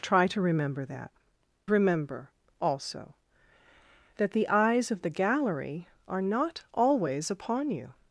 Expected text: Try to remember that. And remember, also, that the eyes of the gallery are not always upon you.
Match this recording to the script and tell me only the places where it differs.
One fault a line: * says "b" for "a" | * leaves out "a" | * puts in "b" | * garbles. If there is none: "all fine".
* leaves out "And"